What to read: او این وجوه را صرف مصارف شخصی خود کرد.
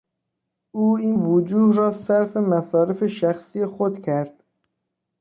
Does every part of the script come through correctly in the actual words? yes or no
yes